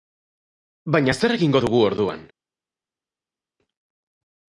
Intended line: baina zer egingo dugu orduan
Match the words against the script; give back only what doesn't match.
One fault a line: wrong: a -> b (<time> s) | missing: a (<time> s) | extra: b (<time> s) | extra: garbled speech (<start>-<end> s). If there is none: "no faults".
no faults